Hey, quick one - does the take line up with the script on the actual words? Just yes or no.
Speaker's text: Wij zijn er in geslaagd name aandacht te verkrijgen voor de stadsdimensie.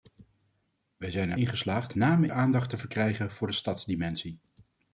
yes